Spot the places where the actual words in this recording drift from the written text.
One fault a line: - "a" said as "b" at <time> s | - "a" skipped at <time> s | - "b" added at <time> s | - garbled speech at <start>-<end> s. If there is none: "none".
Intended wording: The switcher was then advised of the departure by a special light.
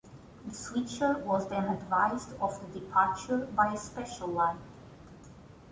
none